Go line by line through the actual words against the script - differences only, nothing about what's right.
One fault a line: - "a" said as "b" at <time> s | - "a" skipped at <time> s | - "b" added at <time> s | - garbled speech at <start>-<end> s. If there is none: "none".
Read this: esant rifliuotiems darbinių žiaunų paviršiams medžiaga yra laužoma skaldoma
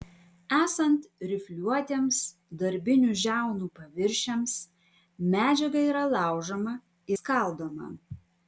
none